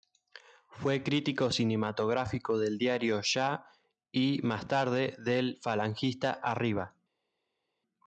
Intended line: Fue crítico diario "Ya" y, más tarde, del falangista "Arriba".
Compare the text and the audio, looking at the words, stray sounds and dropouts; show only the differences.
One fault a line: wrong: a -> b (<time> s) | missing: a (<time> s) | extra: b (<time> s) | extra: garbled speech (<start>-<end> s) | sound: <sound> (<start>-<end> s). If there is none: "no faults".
extra: cinematográfico del (1.5 s)